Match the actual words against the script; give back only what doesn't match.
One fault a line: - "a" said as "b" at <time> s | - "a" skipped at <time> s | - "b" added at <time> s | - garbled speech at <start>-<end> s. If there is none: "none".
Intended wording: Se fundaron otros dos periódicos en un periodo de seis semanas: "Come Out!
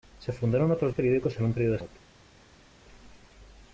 - "dos" skipped at 0.9 s
- "seis semanas Come" skipped at 1.8 s